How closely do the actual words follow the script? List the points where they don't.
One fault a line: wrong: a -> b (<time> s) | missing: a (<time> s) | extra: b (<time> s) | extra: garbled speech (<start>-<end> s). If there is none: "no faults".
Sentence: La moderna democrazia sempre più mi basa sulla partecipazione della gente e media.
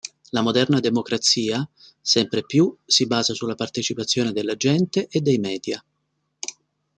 wrong: mi -> si (2.9 s)
extra: dei (5.2 s)